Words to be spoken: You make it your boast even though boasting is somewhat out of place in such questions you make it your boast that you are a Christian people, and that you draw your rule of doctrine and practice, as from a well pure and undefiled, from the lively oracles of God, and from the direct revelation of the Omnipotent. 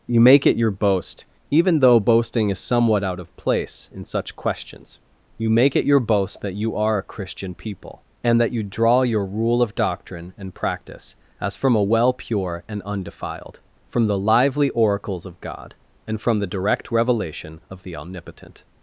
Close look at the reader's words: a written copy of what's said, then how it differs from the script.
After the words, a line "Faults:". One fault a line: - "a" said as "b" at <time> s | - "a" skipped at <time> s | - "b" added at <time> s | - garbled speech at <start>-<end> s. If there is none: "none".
You make it your boast even though boasting is somewhat out of place in such questions you make it your boast that you are a Christian people, and that you draw your rule of doctrine and practice, as from a well pure and undefiled, from the lively oracles of God, and from the direct revelation of the Omnipotent.
Faults:
none